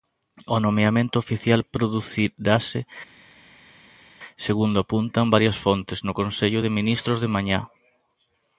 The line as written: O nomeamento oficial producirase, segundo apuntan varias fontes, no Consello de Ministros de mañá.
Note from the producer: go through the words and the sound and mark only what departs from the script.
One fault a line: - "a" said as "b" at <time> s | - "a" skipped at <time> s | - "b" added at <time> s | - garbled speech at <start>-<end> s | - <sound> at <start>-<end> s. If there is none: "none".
none